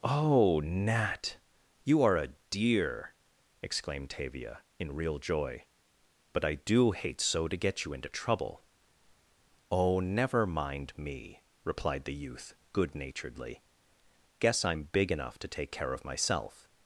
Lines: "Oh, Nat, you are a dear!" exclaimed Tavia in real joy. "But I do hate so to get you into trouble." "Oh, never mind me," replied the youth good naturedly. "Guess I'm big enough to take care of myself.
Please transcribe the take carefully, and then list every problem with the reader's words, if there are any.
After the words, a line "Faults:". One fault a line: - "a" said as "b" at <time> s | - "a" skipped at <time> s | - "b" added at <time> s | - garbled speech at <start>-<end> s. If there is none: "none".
"Oh, Nat, you are a dear!" exclaimed Tavia in real joy. "But I do hate so to get you into trouble." "Oh, never mind me," replied the youth good naturedly. "Guess I'm big enough to take care of myself.
Faults:
none